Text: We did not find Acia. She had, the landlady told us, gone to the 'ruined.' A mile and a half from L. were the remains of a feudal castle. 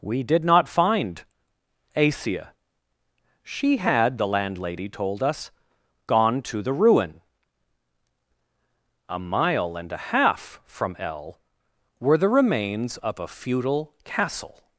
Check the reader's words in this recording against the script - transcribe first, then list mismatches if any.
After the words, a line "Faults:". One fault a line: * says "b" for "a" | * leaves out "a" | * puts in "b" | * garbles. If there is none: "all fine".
We did not find Acia. She had, the landlady told us, gone to the 'ruin.' A mile and a half from L. were the remains of a feudal castle.
Faults:
* says "ruin" for "ruined"